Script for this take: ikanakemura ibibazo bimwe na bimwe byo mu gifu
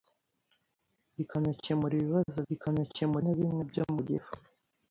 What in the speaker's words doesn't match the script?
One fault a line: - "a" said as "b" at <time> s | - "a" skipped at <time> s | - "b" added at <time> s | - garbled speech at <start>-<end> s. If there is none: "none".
- "bimwe" said as "ikanakemura" at 2.5 s